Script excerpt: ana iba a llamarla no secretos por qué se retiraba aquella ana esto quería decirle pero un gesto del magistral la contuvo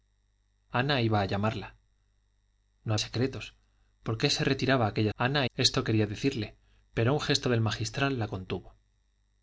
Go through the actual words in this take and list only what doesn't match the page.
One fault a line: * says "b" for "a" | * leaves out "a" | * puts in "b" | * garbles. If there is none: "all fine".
all fine